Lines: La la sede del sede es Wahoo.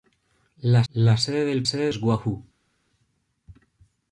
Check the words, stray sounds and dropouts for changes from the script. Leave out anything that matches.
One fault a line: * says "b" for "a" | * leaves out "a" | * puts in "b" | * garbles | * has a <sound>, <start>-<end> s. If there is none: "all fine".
all fine